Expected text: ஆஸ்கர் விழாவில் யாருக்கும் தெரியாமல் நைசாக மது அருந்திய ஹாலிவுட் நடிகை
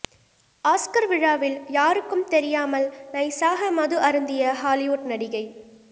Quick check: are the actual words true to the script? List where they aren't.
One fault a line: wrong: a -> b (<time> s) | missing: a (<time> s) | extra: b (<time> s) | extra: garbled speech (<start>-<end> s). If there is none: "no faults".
no faults